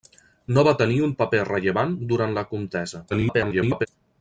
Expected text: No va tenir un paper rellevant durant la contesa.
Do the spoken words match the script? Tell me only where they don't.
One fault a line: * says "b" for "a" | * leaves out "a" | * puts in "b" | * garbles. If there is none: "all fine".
* garbles